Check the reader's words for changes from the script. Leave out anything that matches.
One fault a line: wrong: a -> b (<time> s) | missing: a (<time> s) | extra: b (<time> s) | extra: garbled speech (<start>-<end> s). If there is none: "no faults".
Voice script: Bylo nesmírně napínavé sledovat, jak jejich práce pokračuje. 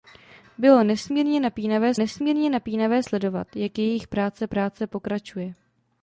extra: nesmírně napínavé (1.9 s)
extra: práce (4.5 s)